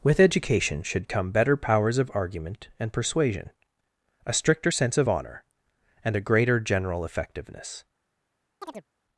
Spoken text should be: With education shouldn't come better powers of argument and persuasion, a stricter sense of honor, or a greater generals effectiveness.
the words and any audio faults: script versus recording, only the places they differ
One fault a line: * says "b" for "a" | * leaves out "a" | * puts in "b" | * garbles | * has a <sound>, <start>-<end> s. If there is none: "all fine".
* says "should" for "shouldn't"
* says "and" for "or"
* says "general" for "generals"
* has a chirp, 8.6-8.9 s